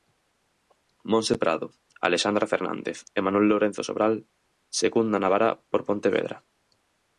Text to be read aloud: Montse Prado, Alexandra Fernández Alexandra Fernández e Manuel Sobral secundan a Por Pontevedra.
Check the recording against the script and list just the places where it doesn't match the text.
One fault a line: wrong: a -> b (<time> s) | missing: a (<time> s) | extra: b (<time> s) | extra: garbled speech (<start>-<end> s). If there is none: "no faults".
missing: Alexandra Fernández (3.0 s)
extra: Lourenzo (3.5 s)
extra: Bará (5.3 s)